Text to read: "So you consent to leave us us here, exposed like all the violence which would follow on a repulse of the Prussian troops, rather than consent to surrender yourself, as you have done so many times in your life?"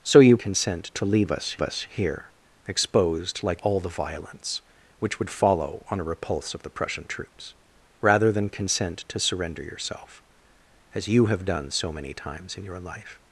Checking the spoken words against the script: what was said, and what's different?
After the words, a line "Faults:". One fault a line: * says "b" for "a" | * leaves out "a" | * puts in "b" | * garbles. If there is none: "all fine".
"So you consent to leave us us here, exposed like all the violence which would follow on a repulse of the Prussian troops, rather than consent to surrender yourself, as you have done so many times in your life?"
Faults:
all fine